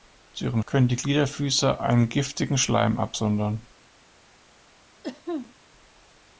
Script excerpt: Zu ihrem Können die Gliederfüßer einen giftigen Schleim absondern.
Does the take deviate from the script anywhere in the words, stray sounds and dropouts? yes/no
yes